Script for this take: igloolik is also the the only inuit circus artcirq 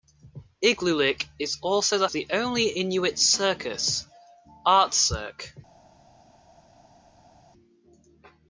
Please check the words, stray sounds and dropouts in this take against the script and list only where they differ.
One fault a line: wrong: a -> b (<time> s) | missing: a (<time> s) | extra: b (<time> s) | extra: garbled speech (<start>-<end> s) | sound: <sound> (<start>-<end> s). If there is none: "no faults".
no faults